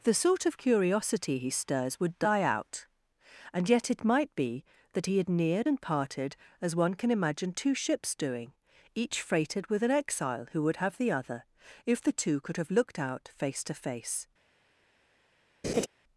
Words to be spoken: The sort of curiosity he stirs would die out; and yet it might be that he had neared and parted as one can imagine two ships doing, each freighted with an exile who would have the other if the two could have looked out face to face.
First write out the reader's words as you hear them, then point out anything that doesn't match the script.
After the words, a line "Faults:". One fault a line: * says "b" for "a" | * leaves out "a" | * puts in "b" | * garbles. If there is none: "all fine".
The sort of curiosity he stirs would die out; and yet it might be that he had neared and parted as one can imagine two ships doing, each freighted with an exile who would have the other if the two could have looked out face to face.
Faults:
all fine